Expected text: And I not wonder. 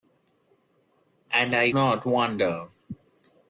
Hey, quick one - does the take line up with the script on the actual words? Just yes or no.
yes